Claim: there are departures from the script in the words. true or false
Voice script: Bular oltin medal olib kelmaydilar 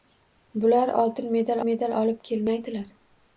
true